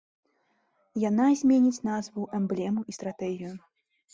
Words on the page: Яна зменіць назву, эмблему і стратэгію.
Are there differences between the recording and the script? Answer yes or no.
no